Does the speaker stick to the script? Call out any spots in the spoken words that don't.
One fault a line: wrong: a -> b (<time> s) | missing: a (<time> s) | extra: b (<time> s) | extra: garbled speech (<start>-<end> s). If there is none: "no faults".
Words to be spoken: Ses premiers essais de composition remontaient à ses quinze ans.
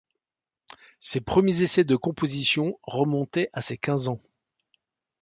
no faults